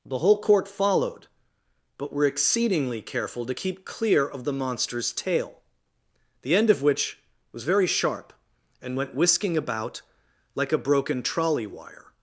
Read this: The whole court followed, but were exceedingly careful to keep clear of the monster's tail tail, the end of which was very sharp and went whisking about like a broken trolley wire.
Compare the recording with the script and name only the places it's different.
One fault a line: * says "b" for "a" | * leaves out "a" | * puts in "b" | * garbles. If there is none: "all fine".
* leaves out "tail"